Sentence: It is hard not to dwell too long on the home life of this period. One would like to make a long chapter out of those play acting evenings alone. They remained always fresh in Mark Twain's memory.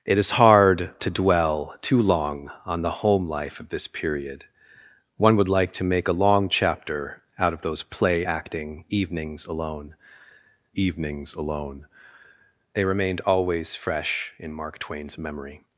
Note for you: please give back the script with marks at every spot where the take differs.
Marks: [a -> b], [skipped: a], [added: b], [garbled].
It is hard [skipped: not] to dwell too long on the home life of this period. One would like to make a long chapter out of those play acting evenings alone. [added: evenings alone] They remained always fresh in Mark Twain's memory.